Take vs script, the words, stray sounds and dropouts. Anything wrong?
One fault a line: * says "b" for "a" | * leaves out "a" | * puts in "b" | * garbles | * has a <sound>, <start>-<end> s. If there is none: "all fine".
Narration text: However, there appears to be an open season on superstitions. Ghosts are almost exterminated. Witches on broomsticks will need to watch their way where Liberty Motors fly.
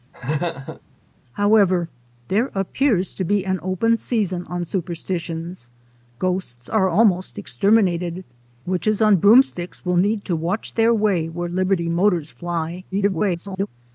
* has a laugh, 0.1-0.8 s
* garbles